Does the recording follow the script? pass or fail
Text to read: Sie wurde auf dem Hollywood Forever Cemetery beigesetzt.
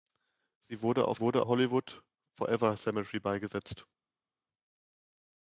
fail